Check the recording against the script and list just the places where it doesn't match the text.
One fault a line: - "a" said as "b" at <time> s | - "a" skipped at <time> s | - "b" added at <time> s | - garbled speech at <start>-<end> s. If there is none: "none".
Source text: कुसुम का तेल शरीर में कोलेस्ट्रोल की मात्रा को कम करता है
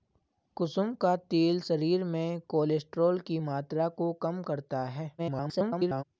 - garbled speech at 5.2-6.0 s